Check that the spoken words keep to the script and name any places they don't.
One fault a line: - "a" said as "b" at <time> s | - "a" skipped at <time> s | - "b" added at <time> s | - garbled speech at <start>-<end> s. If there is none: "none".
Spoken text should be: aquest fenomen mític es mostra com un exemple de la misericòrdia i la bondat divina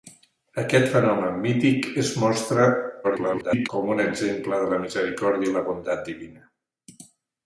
- garbled speech at 3.0-3.7 s